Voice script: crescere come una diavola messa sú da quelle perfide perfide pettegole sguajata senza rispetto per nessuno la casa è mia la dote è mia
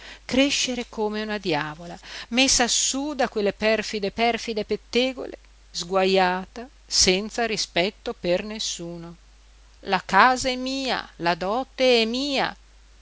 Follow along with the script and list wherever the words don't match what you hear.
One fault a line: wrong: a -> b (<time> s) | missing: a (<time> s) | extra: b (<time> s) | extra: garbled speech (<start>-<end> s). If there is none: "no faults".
no faults